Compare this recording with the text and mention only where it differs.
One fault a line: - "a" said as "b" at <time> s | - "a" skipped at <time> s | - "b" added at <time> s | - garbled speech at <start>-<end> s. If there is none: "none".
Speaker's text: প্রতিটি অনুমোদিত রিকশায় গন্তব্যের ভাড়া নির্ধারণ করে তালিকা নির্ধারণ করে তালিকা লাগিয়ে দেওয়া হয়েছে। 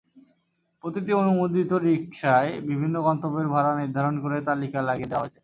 - "বিভিন্ন" added at 2.7 s
- "নির্ধারণ করে তালিকা" skipped at 4.8 s